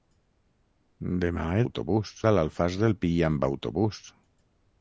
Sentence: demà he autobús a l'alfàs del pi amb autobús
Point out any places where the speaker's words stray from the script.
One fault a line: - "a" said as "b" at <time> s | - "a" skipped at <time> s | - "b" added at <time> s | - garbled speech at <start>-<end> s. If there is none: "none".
none